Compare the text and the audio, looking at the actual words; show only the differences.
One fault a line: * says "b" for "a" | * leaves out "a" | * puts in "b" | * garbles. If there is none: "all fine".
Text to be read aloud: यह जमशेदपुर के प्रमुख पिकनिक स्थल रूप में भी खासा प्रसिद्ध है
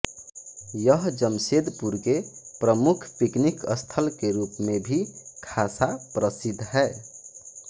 * puts in "के"